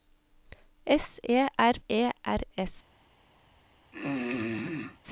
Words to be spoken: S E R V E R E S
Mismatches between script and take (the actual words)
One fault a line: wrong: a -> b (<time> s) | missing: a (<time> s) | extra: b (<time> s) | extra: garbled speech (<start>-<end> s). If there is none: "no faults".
missing: V (1.8 s)
missing: E (2.4 s)